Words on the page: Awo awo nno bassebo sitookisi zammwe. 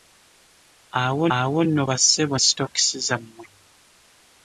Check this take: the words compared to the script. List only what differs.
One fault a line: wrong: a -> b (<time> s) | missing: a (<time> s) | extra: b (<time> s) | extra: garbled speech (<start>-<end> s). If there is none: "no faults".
no faults